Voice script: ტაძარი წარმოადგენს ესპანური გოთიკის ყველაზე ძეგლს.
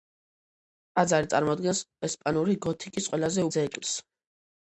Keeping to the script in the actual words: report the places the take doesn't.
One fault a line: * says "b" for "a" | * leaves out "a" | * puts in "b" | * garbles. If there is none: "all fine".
all fine